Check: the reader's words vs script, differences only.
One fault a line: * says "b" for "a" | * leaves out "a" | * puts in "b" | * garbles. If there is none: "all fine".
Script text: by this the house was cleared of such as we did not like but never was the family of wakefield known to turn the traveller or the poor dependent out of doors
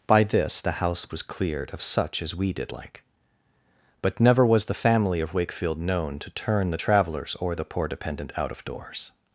* leaves out "not"
* says "travellers" for "traveller"